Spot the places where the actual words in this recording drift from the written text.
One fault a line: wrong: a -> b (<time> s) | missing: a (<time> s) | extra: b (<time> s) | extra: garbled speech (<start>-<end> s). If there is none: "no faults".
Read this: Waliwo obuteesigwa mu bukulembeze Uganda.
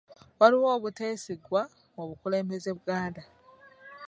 no faults